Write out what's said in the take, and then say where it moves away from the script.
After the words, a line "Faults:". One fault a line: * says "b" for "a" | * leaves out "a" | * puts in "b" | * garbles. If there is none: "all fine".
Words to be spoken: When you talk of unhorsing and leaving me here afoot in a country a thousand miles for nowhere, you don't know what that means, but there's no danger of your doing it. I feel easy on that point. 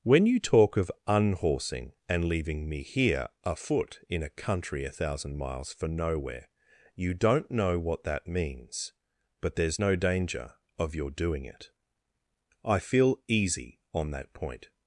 When you talk of unhorsing and leaving me here afoot in a country a thousand miles for nowhere, you don't know what that means, but there's no danger of your doing it. I feel easy on that point.
Faults:
all fine